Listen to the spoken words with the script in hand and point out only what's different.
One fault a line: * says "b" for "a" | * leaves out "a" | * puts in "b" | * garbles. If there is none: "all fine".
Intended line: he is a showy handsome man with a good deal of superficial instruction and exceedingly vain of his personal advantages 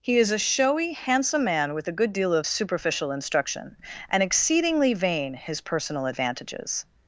* leaves out "of"